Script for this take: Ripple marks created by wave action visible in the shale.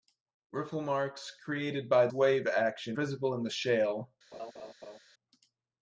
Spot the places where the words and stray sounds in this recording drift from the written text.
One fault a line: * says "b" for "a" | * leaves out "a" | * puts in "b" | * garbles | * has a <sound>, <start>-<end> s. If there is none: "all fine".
* has a laugh, 4.3-5.0 s